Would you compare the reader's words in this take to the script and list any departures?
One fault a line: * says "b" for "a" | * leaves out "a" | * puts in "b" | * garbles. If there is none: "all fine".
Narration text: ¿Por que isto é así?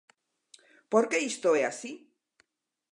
all fine